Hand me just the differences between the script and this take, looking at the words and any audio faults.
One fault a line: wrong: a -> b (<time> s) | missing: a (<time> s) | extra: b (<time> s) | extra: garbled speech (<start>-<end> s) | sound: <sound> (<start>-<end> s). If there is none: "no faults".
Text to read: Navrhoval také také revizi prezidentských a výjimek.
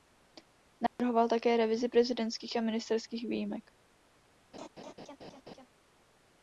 sound: dropout (0.9-1.0 s)
missing: také (1.6 s)
extra: ministerských (2.6 s)
sound: laugh (4.5-5.7 s)